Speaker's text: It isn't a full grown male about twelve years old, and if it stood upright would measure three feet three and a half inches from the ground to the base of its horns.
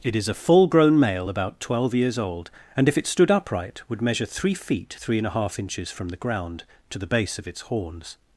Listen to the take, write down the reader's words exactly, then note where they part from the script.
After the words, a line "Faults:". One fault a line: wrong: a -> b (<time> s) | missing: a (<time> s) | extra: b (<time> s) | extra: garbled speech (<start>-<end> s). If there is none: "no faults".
It is a full grown male about twelve years old, and if it stood upright would measure three feet three and a half inches from the ground to the base of its horns.
Faults:
wrong: isn't -> is (0.1 s)